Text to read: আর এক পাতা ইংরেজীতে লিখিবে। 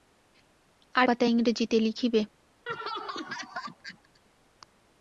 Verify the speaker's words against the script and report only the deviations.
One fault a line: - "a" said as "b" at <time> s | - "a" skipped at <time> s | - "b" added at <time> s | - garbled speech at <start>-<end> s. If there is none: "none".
- "এক" skipped at 1.1 s